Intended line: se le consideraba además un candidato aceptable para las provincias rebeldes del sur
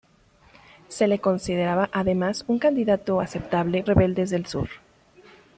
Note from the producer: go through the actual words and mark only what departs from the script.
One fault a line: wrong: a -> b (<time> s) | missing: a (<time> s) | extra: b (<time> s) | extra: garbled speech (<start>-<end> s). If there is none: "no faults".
missing: para las provincias (3.8 s)